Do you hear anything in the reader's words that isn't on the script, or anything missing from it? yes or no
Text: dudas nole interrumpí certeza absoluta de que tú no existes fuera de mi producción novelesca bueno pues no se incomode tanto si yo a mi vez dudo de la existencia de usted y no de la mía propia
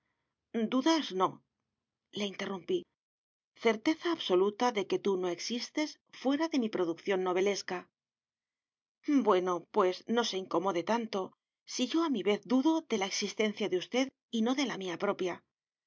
no